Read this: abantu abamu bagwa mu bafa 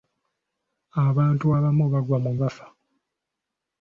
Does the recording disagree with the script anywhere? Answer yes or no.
no